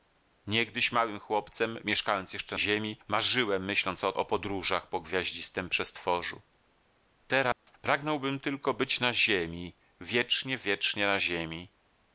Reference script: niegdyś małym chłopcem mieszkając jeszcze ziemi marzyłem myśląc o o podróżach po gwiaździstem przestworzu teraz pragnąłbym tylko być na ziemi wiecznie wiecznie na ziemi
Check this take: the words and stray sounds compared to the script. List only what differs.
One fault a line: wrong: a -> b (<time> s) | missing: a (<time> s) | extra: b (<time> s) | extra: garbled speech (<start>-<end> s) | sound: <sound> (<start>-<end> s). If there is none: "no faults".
sound: dropout (7.5-7.7 s)